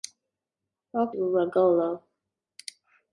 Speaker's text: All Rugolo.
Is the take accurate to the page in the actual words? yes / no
yes